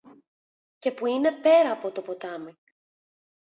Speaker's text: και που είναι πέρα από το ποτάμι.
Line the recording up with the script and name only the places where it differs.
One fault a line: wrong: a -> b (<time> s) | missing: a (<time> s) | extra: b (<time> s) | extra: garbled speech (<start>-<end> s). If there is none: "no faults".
no faults